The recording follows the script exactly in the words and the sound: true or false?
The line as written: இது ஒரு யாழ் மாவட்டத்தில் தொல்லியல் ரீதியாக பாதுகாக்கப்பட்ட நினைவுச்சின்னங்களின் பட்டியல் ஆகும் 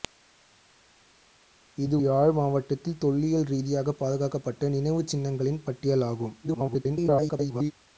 false